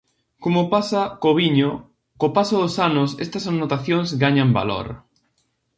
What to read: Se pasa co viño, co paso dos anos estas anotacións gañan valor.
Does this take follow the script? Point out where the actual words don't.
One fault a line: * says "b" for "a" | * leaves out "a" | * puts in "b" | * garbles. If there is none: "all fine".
* says "Como" for "Se"